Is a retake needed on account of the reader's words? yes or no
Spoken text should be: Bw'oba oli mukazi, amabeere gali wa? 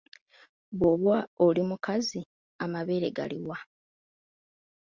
no